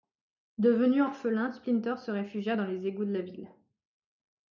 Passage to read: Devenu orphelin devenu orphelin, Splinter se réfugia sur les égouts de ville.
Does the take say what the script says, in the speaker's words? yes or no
no